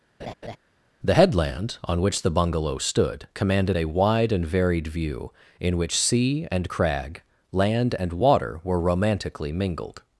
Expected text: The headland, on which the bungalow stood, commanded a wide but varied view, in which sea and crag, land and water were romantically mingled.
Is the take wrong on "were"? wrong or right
right